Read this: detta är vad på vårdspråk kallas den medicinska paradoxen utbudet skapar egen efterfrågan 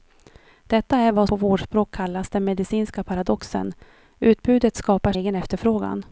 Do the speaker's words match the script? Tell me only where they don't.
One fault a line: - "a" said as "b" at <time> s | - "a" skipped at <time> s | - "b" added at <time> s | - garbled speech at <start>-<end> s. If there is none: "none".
none